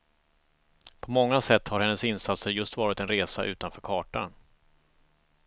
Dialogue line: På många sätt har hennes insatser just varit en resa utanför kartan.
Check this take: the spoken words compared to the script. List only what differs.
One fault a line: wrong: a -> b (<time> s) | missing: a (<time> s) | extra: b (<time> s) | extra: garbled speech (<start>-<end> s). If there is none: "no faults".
no faults